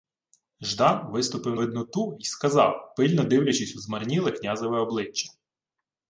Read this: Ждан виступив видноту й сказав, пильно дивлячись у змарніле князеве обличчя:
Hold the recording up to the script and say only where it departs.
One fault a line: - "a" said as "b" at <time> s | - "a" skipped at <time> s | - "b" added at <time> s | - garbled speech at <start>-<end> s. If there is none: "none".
none